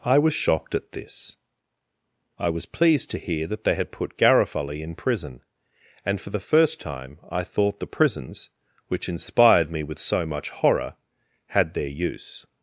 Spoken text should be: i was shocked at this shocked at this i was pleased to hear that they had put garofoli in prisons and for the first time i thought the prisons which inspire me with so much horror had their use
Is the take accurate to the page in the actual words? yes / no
no